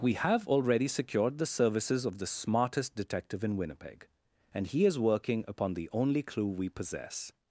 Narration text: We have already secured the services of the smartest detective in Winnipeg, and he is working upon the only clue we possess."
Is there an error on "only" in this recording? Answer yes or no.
no